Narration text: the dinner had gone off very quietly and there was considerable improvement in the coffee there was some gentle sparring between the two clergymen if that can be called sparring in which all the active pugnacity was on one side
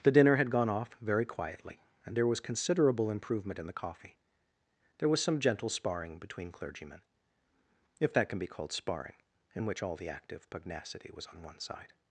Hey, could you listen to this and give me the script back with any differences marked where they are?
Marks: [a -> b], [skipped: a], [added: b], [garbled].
the dinner had gone off very quietly and there was considerable improvement in the coffee there was some gentle sparring between [skipped: the two] clergymen if that can be called sparring in which all the active pugnacity was on one side